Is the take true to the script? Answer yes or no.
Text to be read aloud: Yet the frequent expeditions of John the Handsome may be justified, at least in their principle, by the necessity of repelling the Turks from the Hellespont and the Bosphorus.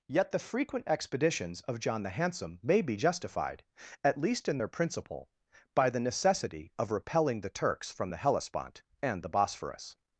yes